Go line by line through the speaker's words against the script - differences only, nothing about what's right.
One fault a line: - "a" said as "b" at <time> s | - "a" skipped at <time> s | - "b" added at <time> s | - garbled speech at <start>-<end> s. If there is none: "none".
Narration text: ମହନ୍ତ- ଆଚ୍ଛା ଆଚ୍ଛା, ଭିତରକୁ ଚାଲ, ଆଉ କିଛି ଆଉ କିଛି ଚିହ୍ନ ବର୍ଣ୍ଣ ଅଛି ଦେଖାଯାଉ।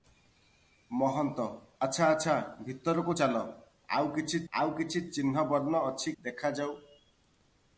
none